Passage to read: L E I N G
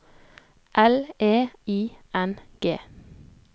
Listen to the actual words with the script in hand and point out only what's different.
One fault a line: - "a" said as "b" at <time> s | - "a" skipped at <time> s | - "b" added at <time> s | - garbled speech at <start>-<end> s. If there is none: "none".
none